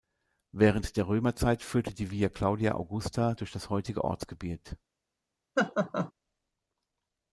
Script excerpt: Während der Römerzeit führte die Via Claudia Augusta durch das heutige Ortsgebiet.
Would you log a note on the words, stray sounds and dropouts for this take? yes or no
yes